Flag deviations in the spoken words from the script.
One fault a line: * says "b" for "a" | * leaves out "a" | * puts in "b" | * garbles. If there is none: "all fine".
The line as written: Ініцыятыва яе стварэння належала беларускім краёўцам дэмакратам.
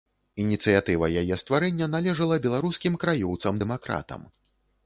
all fine